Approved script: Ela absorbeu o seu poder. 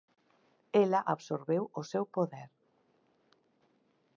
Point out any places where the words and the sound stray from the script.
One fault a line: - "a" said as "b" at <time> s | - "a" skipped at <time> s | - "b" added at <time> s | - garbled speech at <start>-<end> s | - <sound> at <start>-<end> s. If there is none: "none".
none